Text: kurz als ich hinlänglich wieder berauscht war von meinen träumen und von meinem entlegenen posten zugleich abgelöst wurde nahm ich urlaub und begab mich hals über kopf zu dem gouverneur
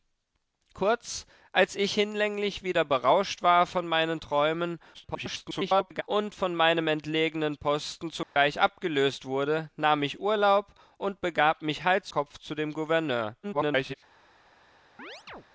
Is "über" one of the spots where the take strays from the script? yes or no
yes